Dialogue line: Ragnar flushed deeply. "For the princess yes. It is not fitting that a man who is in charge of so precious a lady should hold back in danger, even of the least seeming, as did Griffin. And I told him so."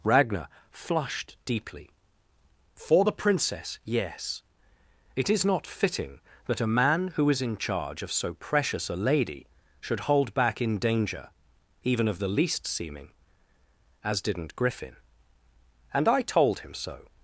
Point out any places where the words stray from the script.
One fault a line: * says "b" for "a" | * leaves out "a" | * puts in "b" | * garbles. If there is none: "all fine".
* says "didn't" for "did"